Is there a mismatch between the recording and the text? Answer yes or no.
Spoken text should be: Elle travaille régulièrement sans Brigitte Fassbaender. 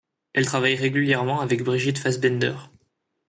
yes